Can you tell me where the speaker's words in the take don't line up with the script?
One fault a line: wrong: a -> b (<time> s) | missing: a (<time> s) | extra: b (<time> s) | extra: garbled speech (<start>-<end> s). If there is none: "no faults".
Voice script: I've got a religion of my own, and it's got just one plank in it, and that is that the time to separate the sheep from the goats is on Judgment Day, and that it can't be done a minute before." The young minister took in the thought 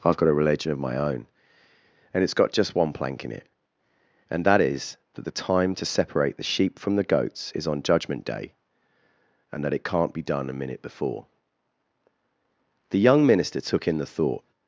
no faults